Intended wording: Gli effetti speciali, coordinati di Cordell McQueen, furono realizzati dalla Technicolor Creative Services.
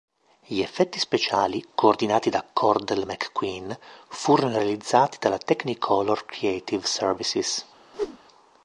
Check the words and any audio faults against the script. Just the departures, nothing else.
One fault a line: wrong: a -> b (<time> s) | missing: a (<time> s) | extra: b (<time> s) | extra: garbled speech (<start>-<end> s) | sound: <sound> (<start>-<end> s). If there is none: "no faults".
wrong: di -> da (2.3 s)
sound: whoosh (7.9-8.2 s)